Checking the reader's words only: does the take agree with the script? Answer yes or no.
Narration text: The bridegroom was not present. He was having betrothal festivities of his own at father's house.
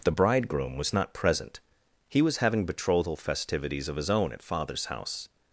yes